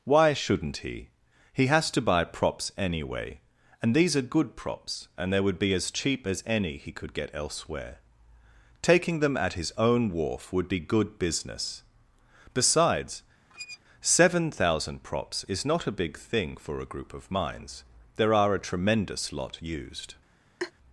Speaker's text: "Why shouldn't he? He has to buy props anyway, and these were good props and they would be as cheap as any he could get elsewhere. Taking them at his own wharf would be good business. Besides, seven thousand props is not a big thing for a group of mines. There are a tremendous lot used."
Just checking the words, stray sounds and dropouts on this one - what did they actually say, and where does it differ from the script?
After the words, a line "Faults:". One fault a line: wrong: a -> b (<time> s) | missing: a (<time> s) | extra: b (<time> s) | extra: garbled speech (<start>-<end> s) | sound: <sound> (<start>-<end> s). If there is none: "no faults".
"Why shouldn't he? He has to buy props anyway, and these are good props and they would be as cheap as any he could get elsewhere. Taking them at his own wharf would be good business. Besides, seven thousand props is not a big thing for a group of mines. There are a tremendous lot used."
Faults:
wrong: were -> are (4.2 s)
sound: squeak (13.5-13.8 s)
sound: laugh (20.6-20.7 s)